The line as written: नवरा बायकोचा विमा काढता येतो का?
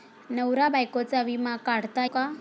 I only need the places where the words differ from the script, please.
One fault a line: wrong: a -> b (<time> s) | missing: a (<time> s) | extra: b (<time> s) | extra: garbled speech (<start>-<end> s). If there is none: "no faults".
missing: येतो (2.1 s)